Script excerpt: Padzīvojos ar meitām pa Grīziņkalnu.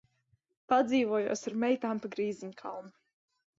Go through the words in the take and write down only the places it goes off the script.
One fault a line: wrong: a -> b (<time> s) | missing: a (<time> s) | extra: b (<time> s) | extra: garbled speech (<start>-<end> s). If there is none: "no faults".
no faults